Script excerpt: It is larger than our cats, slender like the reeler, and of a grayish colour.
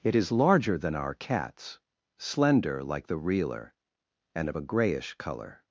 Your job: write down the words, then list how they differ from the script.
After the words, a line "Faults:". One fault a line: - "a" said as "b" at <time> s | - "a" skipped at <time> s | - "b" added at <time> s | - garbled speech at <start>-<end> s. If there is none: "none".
It is larger than our cats, slender like the reeler, and of a grayish colour.
Faults:
none